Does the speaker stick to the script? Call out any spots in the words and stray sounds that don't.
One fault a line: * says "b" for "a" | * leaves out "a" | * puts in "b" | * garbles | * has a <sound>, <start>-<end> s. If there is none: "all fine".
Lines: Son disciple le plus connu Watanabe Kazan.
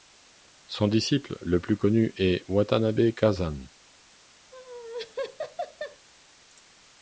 * puts in "est"
* has a laugh, 4.5-6.1 s